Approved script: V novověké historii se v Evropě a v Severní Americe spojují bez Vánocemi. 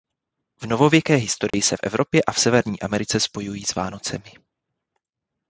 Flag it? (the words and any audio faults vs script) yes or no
yes